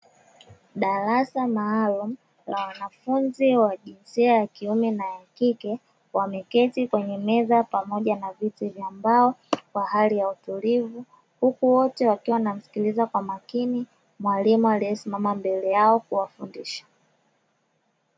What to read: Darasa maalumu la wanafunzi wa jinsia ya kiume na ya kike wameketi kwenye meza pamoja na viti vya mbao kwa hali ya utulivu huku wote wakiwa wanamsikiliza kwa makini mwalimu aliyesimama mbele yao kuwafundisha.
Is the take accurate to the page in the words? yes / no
yes